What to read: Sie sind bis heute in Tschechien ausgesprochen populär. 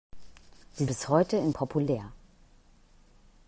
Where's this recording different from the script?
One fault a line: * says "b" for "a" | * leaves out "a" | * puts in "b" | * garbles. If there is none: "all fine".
* leaves out "sind"
* leaves out "Tschechien ausgesprochen"